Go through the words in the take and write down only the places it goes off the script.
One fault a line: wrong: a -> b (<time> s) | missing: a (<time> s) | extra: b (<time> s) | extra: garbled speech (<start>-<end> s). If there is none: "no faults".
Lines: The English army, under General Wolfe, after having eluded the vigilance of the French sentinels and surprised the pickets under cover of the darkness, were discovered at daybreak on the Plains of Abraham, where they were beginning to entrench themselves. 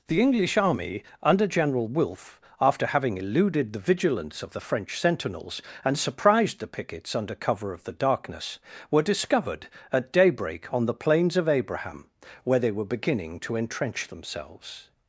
no faults